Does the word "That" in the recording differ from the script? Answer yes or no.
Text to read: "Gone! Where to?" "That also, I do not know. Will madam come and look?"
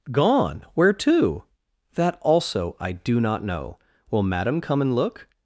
no